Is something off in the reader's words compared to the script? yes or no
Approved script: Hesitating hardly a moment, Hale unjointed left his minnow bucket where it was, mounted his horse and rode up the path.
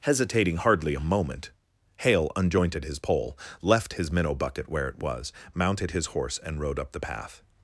yes